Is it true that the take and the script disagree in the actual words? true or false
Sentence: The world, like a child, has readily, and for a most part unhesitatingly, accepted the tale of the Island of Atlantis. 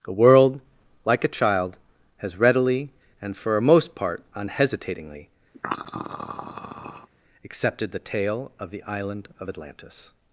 false